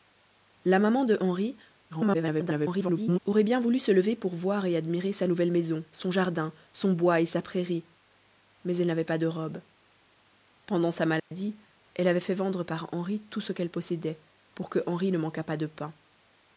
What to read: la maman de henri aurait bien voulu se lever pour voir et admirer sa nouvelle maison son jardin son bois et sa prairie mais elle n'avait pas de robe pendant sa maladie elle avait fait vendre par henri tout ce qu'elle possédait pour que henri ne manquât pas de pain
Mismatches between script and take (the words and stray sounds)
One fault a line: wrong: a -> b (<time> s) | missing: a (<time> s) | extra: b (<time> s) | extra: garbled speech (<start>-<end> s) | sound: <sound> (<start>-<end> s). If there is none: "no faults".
extra: garbled speech (1.9-3.2 s)
sound: dropout (11.2-11.3 s)